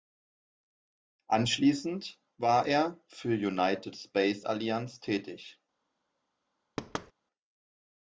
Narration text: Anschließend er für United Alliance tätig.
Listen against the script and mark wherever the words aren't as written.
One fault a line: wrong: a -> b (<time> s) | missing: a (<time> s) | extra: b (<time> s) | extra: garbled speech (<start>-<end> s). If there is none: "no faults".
extra: war (2.4 s)
extra: Space (4.0 s)